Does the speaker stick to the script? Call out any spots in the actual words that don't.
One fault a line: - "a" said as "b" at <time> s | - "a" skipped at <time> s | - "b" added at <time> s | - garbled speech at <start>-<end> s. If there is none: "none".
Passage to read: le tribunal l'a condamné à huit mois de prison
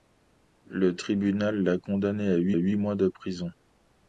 - "huit" added at 2.5 s